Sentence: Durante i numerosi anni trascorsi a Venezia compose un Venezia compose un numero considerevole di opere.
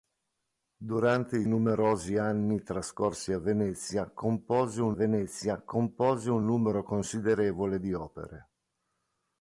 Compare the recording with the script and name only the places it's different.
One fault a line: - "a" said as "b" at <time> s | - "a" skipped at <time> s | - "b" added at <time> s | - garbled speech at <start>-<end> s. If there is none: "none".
none